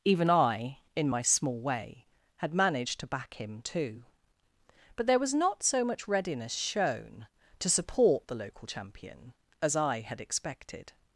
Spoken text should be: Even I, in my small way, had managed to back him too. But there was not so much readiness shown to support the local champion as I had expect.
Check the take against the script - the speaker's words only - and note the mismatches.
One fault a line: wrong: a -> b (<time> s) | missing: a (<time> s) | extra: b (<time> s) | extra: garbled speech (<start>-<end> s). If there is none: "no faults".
wrong: expect -> expected (10.2 s)